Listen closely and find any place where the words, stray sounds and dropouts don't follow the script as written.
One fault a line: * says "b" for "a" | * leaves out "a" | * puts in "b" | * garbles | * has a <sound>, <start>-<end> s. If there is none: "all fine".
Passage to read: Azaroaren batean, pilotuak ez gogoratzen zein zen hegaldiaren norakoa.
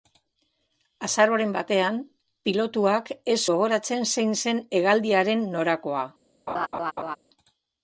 * has a laugh, 6.5-7.2 s